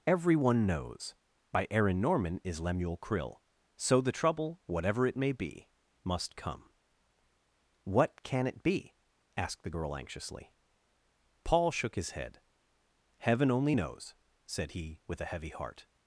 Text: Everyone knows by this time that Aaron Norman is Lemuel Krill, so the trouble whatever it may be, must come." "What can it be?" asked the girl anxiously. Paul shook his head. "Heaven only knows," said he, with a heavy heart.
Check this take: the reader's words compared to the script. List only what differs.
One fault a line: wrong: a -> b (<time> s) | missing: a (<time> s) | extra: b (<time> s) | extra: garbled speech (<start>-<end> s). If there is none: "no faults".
missing: this time that (1.7 s)